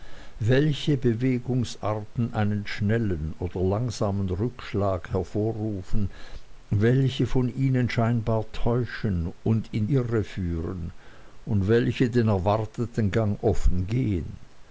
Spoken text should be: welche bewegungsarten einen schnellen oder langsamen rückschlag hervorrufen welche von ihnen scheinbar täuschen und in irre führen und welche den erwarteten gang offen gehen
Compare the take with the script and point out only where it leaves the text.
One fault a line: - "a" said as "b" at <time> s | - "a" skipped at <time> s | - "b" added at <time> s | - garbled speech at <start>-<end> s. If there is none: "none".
none